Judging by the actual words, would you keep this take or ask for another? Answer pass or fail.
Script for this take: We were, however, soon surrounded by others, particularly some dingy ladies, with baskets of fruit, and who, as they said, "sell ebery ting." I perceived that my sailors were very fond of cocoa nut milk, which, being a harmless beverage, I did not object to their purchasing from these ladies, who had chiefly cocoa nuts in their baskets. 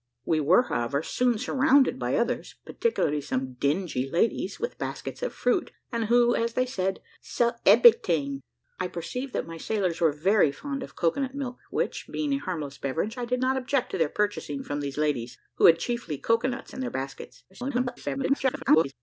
fail